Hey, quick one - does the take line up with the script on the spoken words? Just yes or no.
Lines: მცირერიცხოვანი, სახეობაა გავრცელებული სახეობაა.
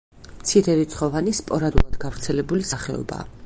no